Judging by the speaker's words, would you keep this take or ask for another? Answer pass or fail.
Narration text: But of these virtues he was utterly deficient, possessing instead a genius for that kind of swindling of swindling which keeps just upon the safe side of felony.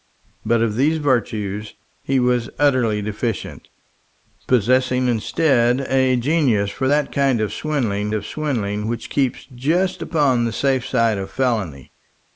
pass